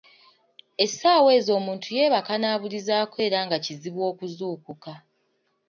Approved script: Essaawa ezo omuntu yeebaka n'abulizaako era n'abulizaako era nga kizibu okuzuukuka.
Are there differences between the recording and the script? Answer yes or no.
yes